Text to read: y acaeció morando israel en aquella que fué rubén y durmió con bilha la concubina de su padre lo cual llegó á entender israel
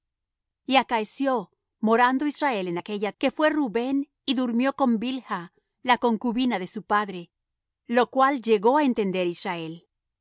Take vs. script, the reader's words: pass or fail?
pass